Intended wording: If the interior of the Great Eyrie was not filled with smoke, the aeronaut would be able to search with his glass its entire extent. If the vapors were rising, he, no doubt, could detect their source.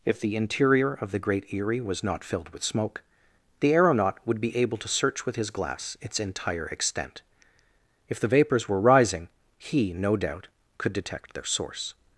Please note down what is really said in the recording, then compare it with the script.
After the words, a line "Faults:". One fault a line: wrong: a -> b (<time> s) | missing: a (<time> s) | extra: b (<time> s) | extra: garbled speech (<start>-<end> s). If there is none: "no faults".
If the interior of the Great Eyrie was not filled with smoke, the aeronaut would be able to search with his glass its entire extent. If the vapors were rising, he, no doubt, could detect their source.
Faults:
no faults